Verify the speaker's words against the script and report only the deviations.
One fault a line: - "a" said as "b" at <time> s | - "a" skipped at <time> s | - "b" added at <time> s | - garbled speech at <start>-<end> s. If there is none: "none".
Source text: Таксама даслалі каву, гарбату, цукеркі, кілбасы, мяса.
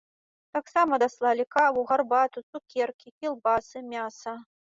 none